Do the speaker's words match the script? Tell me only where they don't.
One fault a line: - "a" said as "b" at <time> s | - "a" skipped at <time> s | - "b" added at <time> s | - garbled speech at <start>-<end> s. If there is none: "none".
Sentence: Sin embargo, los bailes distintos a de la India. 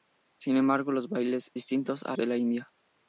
none